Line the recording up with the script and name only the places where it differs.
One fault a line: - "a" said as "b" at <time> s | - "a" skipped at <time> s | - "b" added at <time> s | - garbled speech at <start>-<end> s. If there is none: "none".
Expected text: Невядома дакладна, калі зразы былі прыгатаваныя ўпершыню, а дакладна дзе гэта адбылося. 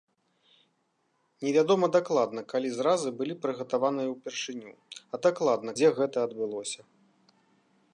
none